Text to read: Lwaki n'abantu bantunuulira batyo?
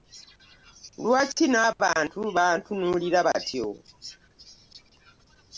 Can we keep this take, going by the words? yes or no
yes